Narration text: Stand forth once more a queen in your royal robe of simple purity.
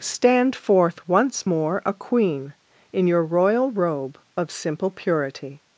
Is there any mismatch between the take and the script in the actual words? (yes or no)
no